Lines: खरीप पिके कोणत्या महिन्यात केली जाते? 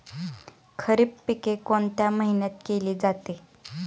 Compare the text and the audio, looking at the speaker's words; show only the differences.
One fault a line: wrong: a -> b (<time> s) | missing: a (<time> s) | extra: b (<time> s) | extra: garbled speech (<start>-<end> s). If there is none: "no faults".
no faults